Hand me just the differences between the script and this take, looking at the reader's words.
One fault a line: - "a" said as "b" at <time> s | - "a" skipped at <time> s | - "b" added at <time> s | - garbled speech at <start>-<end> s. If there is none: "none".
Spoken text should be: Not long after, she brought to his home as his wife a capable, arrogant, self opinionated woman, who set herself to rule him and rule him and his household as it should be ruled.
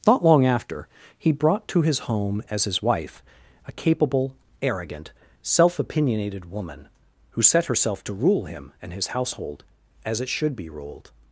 - "she" said as "he" at 1.1 s
- "rule him and" skipped at 8.9 s